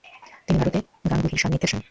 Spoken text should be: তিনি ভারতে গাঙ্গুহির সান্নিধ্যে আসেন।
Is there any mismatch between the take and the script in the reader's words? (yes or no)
no